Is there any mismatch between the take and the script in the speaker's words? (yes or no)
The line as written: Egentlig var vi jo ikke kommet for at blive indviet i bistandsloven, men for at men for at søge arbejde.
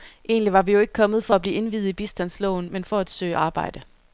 yes